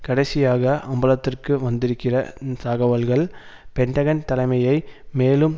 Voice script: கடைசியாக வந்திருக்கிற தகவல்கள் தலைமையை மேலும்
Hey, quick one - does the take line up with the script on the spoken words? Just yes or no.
no